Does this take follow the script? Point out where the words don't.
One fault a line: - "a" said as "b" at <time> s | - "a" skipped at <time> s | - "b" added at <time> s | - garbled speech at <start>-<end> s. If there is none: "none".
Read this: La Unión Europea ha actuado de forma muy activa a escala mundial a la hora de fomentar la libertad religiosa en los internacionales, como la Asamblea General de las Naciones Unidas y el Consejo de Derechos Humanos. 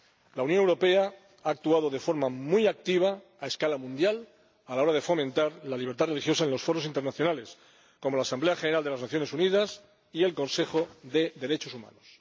- "foros" added at 6.6 s